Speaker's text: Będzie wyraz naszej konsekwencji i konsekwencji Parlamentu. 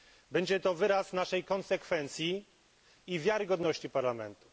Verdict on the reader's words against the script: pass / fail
fail